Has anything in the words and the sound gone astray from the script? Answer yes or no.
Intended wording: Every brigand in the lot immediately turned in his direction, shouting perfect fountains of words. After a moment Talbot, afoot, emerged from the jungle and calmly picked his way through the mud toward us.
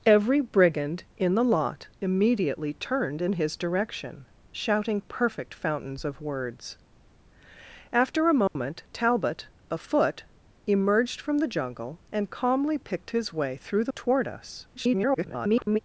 yes